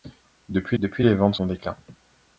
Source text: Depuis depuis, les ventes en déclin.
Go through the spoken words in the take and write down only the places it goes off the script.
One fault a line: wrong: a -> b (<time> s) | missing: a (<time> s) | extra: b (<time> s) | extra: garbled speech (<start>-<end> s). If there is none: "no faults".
no faults